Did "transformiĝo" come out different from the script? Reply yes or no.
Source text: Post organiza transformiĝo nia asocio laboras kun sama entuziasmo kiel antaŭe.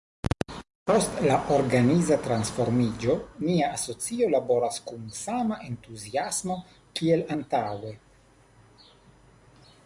no